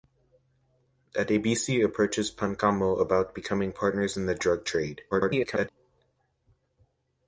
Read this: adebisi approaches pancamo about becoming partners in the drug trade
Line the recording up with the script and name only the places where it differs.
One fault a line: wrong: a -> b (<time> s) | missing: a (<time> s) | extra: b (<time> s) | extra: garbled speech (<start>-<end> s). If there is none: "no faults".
extra: garbled speech (5.1-5.7 s)